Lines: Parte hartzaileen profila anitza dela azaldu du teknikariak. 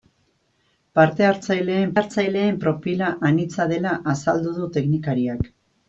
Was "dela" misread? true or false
false